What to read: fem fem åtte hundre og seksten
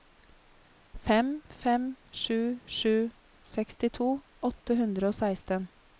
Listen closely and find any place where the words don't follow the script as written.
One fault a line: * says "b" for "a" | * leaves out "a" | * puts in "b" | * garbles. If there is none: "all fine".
* puts in "sju sju sekstito"